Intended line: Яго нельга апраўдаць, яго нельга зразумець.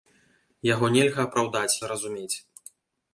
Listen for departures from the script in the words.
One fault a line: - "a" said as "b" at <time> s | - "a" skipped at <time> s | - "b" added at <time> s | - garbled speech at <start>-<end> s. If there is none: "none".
- "яго нельга" skipped at 1.8 s